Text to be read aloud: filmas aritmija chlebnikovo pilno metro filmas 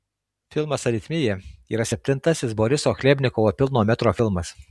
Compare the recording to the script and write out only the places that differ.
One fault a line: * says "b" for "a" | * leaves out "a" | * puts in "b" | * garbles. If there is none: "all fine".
* puts in "yra septintasis boriso"